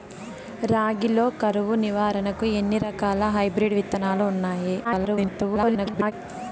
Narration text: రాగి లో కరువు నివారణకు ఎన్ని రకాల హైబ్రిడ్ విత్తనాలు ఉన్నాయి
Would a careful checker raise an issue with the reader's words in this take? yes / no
yes